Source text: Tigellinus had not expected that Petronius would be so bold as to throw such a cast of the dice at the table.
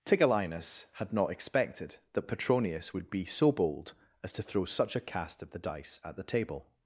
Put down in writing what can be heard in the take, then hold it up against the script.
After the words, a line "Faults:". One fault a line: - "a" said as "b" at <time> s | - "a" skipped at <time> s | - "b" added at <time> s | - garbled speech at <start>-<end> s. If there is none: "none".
Tigellinus had not expected that Petronius would be so bold as to throw such a cast of the dice at the table.
Faults:
none